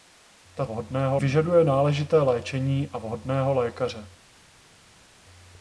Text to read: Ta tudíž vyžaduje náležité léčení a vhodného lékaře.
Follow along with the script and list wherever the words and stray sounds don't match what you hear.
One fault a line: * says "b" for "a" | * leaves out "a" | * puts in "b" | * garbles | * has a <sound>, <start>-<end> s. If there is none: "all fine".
* says "vhodného" for "tudíž"